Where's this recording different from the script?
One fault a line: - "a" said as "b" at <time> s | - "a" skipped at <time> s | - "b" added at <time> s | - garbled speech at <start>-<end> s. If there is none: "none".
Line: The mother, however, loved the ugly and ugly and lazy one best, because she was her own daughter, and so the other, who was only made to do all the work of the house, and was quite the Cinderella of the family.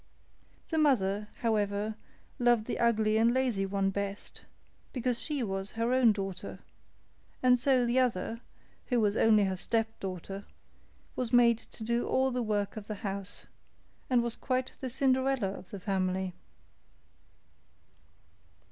- "ugly and" skipped at 3.3 s
- "her stepdaughter was" added at 9.4 s